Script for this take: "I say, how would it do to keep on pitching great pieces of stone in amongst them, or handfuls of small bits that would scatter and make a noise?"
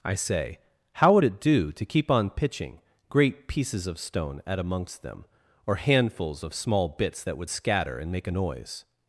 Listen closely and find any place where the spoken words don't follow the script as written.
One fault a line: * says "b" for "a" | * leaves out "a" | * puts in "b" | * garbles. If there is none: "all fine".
* says "at" for "in"